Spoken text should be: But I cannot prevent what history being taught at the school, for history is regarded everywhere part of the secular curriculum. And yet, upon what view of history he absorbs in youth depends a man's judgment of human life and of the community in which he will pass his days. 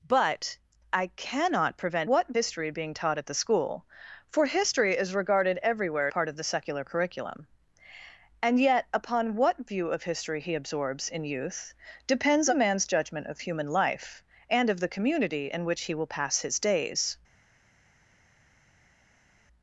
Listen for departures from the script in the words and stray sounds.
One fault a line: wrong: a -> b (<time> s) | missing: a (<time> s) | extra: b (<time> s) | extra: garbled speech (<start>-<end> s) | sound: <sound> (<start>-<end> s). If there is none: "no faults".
no faults